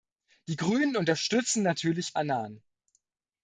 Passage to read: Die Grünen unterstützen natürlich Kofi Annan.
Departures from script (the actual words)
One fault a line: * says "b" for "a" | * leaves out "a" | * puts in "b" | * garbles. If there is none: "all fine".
* leaves out "Kofi"